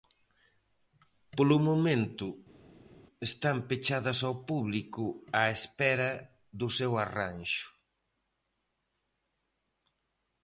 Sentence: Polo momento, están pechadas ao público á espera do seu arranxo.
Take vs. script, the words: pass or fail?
pass